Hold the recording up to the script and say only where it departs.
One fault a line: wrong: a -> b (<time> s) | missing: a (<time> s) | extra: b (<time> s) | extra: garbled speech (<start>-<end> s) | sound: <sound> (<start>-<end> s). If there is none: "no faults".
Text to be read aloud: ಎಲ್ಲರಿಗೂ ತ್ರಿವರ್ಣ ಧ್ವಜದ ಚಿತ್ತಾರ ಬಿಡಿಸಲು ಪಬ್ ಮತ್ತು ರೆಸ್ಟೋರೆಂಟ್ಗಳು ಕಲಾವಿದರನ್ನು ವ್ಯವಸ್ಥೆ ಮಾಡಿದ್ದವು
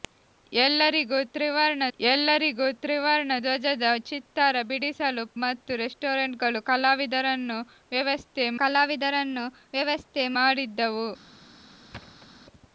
extra: ಎಲ್ಲರಿಗೂ ತ್ರಿವರ್ಣ (2.0 s)
missing: ಪಬ್ (5.2 s)
extra: ಕಲಾವಿದರನ್ನು ವ್ಯವಸ್ಥೆ (8.6 s)
sound: thud (11.9-12.3 s)